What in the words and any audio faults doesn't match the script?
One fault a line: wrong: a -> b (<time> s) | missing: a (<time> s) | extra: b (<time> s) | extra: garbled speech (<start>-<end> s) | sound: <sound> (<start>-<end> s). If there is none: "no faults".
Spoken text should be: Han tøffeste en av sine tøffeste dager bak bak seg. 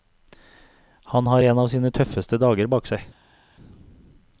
wrong: tøffeste -> har (1.3 s)
missing: bak (2.9 s)